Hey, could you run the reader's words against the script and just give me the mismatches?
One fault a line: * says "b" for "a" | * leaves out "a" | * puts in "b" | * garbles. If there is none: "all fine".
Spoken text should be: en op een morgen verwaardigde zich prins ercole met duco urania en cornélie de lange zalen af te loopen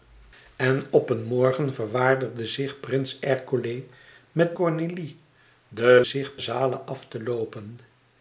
* leaves out "duco urania en"
* says "zich" for "lange"